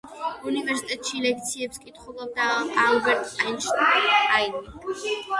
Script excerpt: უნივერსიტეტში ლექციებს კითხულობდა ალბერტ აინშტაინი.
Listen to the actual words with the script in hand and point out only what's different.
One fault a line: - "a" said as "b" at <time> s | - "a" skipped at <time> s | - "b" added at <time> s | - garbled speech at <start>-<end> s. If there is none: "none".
none